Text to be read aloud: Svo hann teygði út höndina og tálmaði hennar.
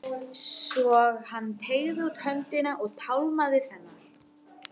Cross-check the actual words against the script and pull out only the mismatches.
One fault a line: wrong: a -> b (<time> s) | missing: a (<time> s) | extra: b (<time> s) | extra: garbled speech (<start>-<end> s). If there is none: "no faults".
no faults